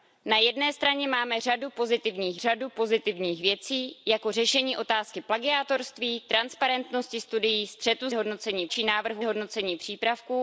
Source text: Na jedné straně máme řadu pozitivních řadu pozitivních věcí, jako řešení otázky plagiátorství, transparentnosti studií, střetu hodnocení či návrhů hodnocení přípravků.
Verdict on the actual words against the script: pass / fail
pass